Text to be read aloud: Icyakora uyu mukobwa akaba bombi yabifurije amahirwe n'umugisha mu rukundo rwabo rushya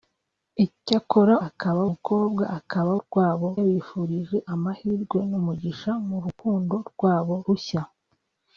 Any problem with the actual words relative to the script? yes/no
yes